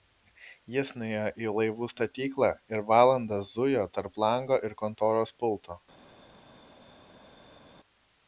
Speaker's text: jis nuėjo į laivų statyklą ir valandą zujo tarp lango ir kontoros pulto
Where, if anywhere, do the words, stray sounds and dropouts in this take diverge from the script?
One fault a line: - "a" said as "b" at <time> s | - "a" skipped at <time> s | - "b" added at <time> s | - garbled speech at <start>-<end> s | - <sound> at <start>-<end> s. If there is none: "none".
none